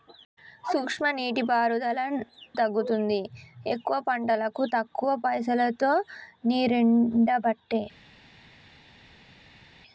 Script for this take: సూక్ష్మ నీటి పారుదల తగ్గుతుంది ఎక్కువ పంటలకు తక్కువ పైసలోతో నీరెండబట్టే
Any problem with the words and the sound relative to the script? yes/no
no